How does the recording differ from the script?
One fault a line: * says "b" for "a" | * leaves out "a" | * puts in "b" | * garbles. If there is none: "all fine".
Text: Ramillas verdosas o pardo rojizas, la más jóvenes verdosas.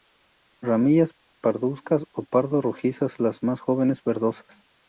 * says "parduzcas" for "verdosas"
* says "las" for "la"